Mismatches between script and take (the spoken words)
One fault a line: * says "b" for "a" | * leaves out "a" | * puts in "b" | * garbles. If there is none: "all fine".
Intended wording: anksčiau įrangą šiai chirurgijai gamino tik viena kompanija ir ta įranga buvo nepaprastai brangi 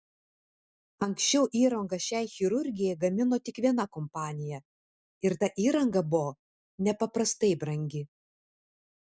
all fine